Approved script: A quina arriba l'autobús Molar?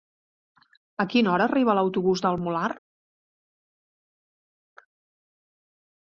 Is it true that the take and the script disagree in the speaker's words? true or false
true